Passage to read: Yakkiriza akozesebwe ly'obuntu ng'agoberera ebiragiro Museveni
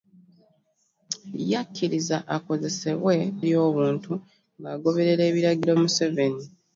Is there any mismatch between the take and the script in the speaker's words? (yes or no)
no